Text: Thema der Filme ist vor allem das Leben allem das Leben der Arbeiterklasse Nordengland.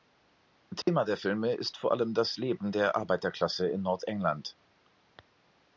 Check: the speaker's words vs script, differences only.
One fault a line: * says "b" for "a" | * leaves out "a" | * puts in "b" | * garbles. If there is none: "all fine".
* leaves out "allem das Leben"
* puts in "in"